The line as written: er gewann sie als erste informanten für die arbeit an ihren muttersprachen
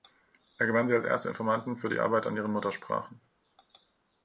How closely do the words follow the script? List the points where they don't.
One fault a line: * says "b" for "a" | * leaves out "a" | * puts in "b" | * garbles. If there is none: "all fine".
all fine